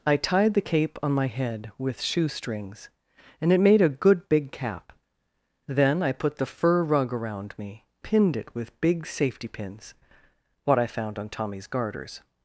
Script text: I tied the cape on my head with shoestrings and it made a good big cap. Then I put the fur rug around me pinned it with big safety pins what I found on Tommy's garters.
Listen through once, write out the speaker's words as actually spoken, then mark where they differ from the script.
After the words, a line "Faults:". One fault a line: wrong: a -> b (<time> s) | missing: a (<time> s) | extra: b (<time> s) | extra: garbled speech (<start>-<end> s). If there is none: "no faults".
I tied the cape on my head with shoestrings and it made a good big cap. Then I put the fur rug around me pinned it with big safety pins what I found on Tommy's garters.
Faults:
no faults